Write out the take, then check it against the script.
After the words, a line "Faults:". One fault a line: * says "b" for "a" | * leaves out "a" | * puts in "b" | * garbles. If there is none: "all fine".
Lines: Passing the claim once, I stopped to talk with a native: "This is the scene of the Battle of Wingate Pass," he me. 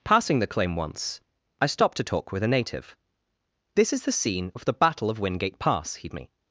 Passing the claim once, I stopped to talk with a native: "This is the scene of the Battle of Wingate Pass," he me.
Faults:
all fine